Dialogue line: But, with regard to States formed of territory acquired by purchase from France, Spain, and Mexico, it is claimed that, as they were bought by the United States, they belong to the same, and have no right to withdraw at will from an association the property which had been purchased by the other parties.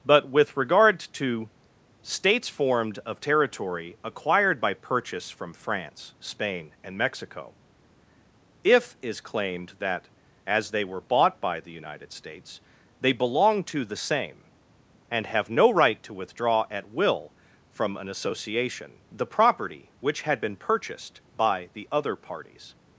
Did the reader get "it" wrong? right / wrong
wrong